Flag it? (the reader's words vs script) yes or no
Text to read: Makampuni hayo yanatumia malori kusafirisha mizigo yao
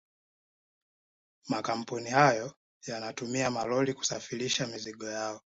no